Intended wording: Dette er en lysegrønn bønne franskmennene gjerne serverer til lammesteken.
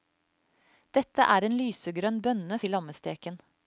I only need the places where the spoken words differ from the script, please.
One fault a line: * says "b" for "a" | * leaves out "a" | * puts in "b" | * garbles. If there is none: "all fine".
* leaves out "franskmennene gjerne serverer"